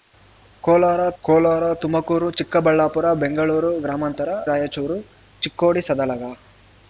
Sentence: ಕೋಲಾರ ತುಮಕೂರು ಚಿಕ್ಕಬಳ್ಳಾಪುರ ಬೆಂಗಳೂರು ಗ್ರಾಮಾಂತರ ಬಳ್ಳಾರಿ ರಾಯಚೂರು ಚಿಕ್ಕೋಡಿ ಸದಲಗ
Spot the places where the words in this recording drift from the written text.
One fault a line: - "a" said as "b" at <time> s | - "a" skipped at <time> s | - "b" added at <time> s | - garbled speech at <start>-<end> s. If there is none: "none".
- "ಕೋಲಾರ" added at 1.2 s
- "ಬಳ್ಳಾರಿ" skipped at 4.3 s